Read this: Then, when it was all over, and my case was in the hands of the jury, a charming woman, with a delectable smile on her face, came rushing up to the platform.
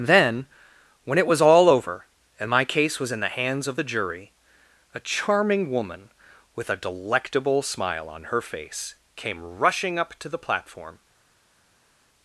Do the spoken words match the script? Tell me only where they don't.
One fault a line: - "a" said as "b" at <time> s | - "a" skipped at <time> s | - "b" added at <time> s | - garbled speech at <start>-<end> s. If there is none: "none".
none